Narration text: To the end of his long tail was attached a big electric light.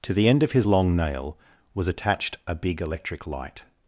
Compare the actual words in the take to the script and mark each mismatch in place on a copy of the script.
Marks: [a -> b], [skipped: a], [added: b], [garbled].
To the end of his long [tail -> nail] was attached a big electric light.